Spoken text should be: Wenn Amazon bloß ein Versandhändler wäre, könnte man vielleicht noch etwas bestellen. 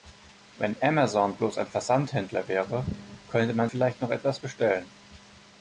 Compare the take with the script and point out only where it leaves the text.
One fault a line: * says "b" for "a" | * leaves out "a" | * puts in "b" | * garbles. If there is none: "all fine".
all fine